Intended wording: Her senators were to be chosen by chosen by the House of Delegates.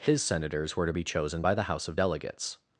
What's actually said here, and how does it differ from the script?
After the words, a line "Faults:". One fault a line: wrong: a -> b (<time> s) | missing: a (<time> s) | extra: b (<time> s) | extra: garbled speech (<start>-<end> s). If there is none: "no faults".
His senators were to be chosen by the House of Delegates.
Faults:
wrong: Her -> His (0.0 s)
missing: chosen by (1.6 s)